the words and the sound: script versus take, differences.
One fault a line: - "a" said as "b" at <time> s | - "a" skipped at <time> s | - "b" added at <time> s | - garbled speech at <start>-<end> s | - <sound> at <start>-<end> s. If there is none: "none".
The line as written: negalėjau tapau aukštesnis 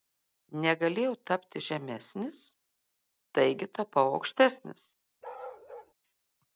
- "tapti žemesnis taigi" added at 1.3 s
- bark at 5.2-5.9 s